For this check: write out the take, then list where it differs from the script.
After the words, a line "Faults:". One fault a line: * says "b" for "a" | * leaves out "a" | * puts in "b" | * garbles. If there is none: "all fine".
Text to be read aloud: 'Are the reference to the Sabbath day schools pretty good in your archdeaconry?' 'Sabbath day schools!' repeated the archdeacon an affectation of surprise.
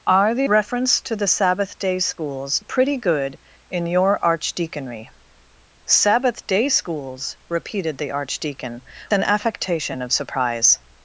'Are the reference to the Sabbath day schools pretty good in your archdeaconry?' 'Sabbath day schools!' repeated the archdeacon an affectation of surprise.
Faults:
all fine